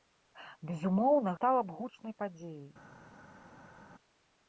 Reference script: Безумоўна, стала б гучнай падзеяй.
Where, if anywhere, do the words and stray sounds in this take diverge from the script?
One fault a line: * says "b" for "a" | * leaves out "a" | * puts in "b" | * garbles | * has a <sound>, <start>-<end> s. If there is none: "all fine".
all fine